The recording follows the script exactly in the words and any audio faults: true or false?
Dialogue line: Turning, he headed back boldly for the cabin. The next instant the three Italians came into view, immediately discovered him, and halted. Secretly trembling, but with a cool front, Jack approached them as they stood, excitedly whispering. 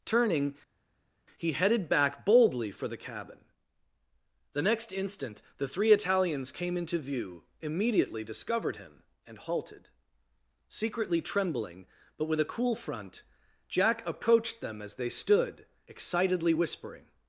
true